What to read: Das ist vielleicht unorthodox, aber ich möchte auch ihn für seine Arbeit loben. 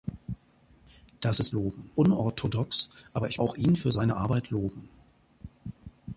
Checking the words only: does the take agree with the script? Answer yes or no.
no